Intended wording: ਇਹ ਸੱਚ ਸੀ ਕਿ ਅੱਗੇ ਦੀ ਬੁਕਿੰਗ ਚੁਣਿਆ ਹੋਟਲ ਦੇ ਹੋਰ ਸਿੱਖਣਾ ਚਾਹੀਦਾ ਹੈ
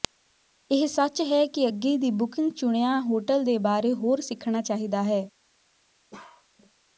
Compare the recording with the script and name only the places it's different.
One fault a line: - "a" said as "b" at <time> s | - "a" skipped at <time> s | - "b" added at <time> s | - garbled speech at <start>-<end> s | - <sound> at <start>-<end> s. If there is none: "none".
- "ਸੀ" said as "ਹੈ" at 1.2 s
- "ਬਾਰੇ" added at 3.6 s
- bark at 6.1-6.5 s